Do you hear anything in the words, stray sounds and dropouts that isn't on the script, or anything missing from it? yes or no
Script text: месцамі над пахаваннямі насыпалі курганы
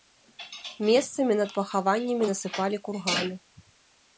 no